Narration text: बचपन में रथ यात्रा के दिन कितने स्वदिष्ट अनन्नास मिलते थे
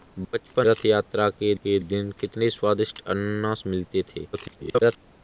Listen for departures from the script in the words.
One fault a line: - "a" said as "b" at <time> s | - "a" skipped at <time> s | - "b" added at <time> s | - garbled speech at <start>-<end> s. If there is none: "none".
- "में" skipped at 0.7 s
- "के" added at 1.5 s
- garbled speech at 4.3-5.0 s